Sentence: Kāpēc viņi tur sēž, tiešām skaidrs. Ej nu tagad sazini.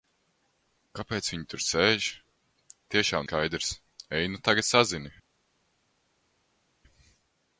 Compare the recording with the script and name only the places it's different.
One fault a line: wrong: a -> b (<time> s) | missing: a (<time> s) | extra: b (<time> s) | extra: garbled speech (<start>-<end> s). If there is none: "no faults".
no faults